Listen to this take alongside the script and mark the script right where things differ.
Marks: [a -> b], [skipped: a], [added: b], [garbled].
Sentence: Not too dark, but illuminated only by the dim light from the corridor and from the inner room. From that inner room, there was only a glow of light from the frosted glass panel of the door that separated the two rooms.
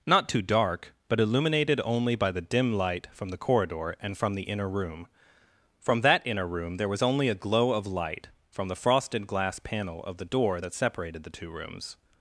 Not too dark, but illuminated only by the dim light from the corridor and from the inner room. From that inner room, there was only a glow of light from the frosted glass panel of the door that separated the two rooms.